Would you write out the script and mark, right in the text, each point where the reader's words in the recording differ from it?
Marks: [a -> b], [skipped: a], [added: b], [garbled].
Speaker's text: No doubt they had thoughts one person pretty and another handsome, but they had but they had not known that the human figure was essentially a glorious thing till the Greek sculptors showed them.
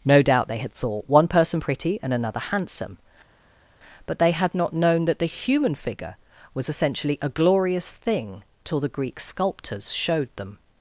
No doubt they had [thoughts -> thought] one person pretty and another handsome, but they had [skipped: but they had] not known that the human figure was essentially a glorious thing till the Greek sculptors showed them.